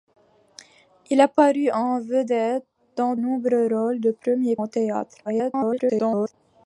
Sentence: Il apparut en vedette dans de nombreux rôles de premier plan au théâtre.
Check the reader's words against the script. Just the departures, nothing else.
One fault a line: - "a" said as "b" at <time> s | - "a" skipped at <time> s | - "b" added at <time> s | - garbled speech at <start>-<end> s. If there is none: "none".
- "de" skipped at 3.1 s
- "plan" skipped at 4.6 s
- garbled speech at 5.2-6.3 s